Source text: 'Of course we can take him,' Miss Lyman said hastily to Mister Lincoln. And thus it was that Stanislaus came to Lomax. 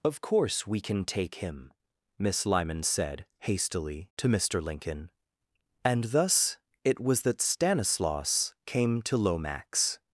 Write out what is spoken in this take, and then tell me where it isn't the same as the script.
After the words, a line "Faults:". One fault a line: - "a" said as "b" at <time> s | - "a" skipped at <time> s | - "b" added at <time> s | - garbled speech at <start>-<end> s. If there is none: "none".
'Of course we can take him,' Miss Lyman said hastily to Mister Lincoln. And thus it was that Stanislaus came to Lomax.
Faults:
none